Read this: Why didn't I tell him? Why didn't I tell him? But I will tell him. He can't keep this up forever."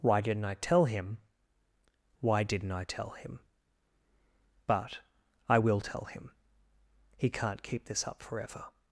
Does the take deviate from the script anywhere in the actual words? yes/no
no